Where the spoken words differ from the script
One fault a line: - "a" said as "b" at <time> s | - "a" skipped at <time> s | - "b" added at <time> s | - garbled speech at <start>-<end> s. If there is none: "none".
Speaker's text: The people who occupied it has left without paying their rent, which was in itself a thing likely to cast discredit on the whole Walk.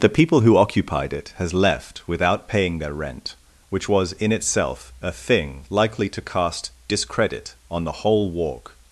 none